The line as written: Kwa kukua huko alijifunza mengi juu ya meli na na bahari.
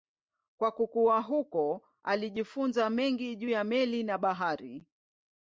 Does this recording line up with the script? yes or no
no